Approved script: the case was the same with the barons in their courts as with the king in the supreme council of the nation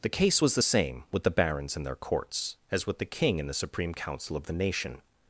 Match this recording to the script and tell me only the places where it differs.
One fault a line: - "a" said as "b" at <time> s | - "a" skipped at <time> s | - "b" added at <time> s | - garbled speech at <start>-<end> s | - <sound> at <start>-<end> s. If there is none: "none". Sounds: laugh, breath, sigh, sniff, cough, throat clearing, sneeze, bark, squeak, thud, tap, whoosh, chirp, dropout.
none